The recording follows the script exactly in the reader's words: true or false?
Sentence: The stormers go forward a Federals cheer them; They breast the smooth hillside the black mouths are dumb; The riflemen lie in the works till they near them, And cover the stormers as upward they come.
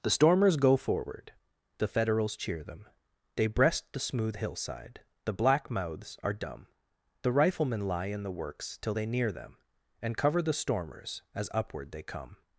false